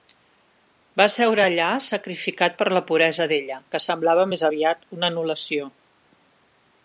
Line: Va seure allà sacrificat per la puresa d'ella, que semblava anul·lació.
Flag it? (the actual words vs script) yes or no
yes